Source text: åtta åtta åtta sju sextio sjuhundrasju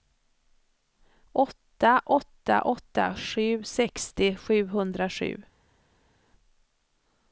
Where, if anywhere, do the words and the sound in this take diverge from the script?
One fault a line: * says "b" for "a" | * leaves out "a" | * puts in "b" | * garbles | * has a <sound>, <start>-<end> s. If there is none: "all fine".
all fine